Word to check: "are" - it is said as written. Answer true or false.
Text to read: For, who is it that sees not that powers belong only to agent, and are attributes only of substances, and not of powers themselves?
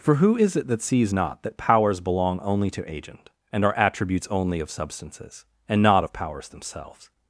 true